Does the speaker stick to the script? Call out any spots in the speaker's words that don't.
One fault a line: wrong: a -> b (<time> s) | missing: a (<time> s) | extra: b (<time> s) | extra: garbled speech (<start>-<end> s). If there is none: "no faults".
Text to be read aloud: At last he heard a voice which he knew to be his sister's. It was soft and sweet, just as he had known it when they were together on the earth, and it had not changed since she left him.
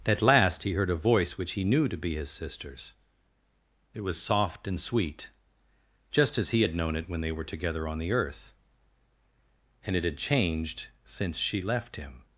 missing: not (10.2 s)